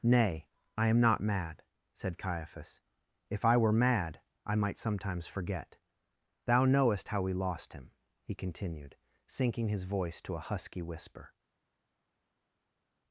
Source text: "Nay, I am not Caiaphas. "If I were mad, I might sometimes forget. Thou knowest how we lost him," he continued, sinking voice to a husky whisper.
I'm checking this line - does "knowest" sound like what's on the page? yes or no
yes